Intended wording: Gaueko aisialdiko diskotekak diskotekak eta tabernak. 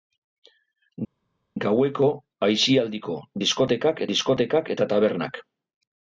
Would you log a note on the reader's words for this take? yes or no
no